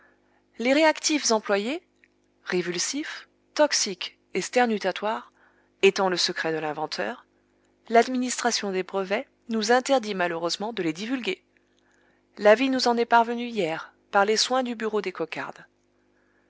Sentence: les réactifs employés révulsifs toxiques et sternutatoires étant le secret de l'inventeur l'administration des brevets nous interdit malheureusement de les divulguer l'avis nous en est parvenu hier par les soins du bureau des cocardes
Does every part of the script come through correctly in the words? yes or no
yes